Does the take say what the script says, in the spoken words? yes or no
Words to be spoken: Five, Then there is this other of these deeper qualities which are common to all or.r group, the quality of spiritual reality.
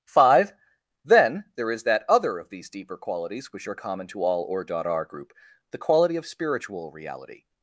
no